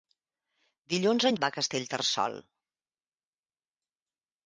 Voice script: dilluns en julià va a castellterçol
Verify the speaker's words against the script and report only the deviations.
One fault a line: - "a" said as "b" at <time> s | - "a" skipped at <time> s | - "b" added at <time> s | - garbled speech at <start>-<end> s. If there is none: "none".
- "julià" skipped at 1.4 s